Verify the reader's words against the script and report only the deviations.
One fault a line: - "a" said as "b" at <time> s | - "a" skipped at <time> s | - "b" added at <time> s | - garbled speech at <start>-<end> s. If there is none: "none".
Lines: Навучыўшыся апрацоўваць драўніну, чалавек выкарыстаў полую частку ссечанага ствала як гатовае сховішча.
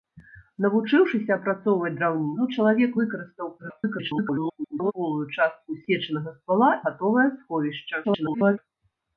- garbled speech at 3.6-4.9 s
- "як" skipped at 6.7 s
- garbled speech at 8.0-8.6 s